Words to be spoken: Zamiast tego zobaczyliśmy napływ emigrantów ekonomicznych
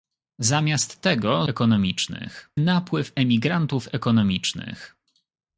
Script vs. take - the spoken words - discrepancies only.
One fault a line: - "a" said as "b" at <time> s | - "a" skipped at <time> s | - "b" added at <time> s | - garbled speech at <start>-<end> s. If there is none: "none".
- "zobaczyliśmy" said as "ekonomicznych" at 1.5 s